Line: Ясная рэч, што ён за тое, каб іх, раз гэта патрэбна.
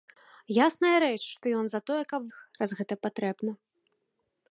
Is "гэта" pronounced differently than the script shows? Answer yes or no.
no